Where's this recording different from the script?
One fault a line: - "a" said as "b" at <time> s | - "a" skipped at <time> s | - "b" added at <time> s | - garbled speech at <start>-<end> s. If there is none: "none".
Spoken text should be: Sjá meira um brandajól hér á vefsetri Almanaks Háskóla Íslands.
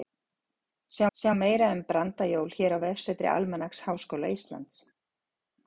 - "sjá" added at 1.1 s